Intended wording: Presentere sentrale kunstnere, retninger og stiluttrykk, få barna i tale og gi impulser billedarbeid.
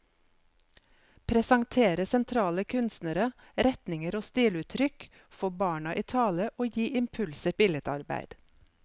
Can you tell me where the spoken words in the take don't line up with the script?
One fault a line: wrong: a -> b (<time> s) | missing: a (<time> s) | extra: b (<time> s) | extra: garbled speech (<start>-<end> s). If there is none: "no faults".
no faults